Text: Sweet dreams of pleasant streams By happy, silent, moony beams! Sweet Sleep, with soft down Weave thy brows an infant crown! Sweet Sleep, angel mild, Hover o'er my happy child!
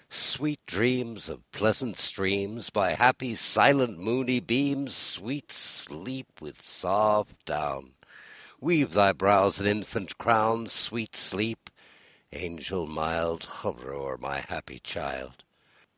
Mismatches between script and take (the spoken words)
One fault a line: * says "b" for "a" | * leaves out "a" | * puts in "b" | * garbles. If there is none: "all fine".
all fine